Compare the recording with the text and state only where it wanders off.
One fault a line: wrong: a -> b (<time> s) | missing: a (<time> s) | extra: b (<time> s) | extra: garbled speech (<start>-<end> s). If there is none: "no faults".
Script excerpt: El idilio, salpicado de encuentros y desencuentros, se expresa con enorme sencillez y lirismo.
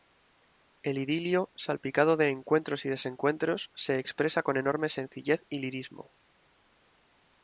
no faults